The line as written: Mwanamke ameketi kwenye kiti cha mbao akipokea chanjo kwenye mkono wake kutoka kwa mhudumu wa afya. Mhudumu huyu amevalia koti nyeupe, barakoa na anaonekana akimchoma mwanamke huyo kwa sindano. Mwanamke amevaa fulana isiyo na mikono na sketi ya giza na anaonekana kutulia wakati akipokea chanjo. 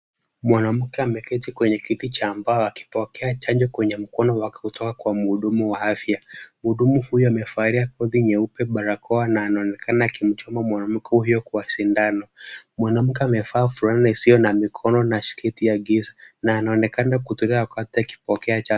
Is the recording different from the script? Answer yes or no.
no